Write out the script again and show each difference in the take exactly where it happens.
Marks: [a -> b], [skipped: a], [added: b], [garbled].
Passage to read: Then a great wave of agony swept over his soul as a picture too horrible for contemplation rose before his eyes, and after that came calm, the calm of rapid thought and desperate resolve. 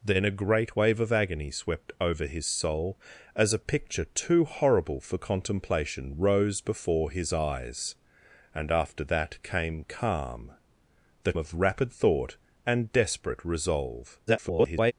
Then a great wave of agony swept over his soul as a picture too horrible for contemplation rose before his eyes, and after that came calm, the [skipped: calm] of rapid thought and desperate resolve. [garbled]